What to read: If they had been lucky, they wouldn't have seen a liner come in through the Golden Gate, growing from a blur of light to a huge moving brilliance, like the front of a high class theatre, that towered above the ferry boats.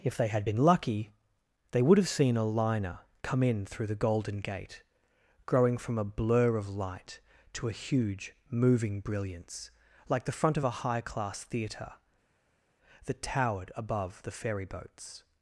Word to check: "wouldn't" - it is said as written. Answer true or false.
false